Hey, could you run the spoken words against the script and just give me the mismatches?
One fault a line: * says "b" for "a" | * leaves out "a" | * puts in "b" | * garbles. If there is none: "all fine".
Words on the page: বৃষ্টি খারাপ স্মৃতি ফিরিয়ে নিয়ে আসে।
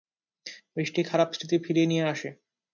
all fine